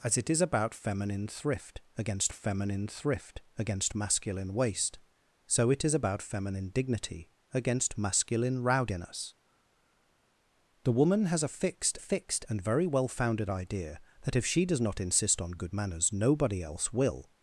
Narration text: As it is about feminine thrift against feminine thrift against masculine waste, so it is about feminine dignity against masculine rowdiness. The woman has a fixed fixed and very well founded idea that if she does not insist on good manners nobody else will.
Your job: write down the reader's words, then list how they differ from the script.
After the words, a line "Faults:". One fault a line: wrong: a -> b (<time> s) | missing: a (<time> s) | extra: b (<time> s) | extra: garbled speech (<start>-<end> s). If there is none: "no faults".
As it is about feminine thrift against feminine thrift against masculine waste, so it is about feminine dignity against masculine rowdiness. The woman has a fixed fixed and very well founded idea that if she does not insist on good manners nobody else will.
Faults:
no faults